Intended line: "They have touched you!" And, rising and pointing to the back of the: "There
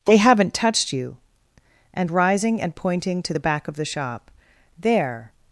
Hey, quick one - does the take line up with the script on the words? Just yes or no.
no